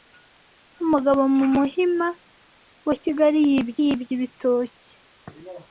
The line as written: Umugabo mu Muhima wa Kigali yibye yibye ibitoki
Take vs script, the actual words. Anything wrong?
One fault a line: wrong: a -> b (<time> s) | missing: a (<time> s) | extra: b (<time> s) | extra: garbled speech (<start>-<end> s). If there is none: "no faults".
no faults